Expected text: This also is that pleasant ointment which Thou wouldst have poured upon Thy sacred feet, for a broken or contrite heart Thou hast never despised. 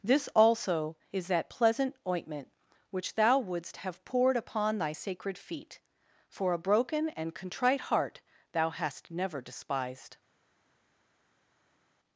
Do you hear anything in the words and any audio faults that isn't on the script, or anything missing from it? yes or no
yes